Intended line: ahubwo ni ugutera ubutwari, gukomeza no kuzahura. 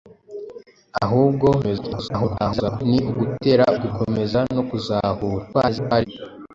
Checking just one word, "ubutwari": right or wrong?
wrong